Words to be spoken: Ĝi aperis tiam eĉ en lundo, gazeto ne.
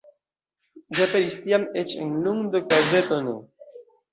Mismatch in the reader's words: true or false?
false